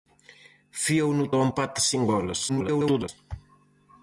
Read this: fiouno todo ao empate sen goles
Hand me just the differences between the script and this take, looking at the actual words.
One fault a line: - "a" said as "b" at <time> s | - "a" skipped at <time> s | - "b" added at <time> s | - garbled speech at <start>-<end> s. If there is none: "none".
- "todo" skipped at 1.2 s
- garbled speech at 2.5-3.1 s